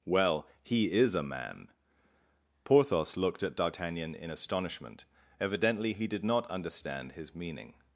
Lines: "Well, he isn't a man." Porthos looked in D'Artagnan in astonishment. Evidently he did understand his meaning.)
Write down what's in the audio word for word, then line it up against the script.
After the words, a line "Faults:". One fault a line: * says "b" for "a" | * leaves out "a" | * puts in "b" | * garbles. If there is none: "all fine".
"Well, he is a man." Porthos looked at D'Artagnan in astonishment. Evidently he did not understand his meaning.)
Faults:
* says "is" for "isn't"
* says "at" for "in"
* puts in "not"